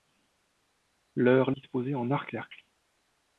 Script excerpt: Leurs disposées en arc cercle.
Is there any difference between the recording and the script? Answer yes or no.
no